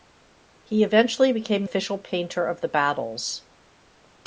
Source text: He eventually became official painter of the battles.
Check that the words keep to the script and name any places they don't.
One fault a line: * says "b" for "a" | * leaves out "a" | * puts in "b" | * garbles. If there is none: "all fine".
all fine